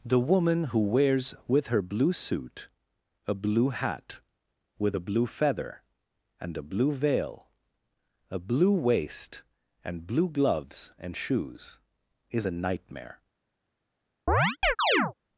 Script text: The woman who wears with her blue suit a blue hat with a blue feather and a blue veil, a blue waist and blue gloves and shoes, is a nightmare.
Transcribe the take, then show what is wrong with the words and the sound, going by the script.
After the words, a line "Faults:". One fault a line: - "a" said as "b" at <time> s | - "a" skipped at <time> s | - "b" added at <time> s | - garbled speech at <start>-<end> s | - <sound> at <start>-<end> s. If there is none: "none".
The woman who wears with her blue suit a blue hat with a blue feather and a blue veil, a blue waist and blue gloves and shoes, is a nightmare.
Faults:
- chirp at 14.3-15.1 s